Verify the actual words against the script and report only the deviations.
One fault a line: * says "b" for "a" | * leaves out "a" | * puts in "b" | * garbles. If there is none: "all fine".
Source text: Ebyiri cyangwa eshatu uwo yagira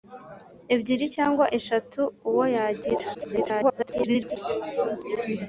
* garbles